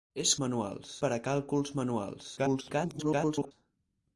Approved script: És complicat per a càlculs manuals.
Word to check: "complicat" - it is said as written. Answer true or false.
false